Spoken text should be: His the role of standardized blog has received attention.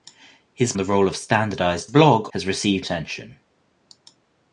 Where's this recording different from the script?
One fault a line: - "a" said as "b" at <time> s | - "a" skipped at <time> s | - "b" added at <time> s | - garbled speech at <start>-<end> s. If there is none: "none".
none